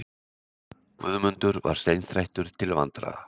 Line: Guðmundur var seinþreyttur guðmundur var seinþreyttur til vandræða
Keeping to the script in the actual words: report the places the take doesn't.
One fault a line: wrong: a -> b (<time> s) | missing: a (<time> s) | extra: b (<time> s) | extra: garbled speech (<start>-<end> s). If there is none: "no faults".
missing: guðmundur var seinþreyttur (2.5 s)